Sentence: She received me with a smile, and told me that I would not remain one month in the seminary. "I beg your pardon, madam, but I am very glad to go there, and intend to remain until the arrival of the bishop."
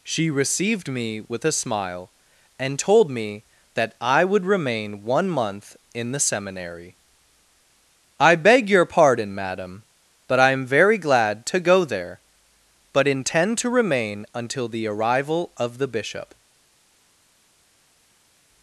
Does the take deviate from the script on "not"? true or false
true